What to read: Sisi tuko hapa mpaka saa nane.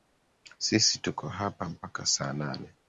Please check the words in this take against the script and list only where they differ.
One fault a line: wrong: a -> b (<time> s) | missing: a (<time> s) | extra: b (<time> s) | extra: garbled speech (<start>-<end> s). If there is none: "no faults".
no faults